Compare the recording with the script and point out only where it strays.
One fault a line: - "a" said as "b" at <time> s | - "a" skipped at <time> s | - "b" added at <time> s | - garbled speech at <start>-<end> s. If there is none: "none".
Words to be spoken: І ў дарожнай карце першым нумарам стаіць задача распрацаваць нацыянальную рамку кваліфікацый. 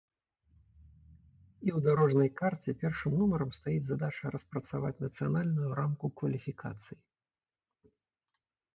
none